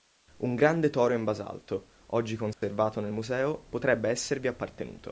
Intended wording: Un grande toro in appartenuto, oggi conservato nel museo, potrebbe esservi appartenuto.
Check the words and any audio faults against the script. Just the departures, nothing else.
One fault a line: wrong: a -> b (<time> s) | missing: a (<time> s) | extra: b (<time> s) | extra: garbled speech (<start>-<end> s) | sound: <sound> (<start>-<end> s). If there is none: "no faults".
wrong: appartenuto -> basalto (1.2 s)
sound: dropout (2.5-2.6 s)